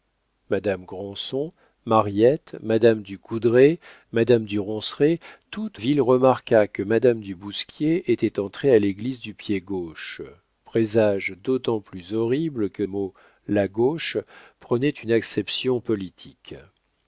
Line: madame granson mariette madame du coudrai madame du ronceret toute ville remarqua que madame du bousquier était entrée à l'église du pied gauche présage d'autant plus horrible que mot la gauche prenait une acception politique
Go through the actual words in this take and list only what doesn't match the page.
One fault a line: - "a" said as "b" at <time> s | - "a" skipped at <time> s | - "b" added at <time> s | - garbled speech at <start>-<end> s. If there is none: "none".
none